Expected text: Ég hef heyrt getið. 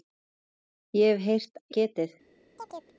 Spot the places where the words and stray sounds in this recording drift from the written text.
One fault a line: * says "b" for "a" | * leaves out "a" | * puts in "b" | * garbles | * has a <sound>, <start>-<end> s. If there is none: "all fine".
* has a chirp, 2.6-3.0 s